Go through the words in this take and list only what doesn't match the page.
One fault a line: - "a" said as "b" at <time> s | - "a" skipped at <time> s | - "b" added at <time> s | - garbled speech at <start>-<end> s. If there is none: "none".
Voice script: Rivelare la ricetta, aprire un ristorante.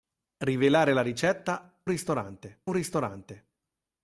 - "aprire" said as "ristorante" at 1.9 s